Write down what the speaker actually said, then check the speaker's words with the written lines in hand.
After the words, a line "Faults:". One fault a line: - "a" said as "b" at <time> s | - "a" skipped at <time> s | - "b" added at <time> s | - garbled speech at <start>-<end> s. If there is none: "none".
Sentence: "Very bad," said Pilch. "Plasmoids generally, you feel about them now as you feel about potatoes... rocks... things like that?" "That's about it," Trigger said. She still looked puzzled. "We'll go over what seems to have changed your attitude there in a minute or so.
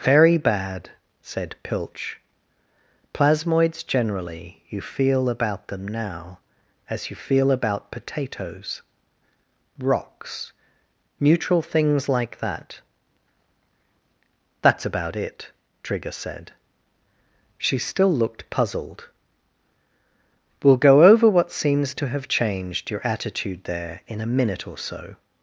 "Very bad," said Pilch. "Plasmoids generally, you feel about them now as you feel about potatoes... rocks... neutral things like that?" "That's about it," Trigger said. She still looked puzzled. "We'll go over what seems to have changed your attitude there in a minute or so.
Faults:
- "neutral" added at 11.2 s